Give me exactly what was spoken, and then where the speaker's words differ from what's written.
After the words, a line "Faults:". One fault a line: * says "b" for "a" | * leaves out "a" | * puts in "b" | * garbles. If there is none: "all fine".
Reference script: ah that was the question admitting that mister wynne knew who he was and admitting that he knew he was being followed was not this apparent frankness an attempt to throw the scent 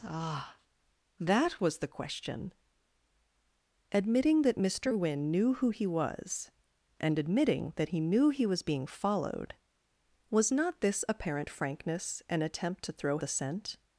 ah that was the question admitting that mister wynne knew who he was and admitting that he knew he was being followed was not this apparent frankness an attempt to throw the scent
Faults:
all fine